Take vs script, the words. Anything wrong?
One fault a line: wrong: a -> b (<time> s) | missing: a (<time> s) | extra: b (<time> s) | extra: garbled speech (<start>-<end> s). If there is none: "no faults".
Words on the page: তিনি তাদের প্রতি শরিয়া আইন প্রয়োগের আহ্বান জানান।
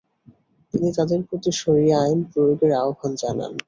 no faults